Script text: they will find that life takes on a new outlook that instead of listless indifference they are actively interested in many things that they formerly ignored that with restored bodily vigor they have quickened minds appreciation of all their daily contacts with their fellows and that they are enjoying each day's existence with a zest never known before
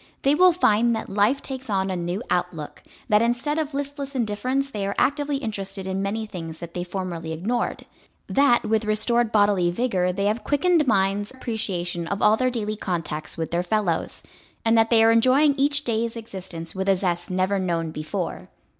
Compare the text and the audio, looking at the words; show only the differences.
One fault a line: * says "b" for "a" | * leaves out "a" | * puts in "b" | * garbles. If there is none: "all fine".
all fine